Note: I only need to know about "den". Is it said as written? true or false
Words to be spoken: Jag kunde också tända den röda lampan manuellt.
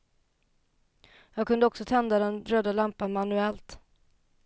true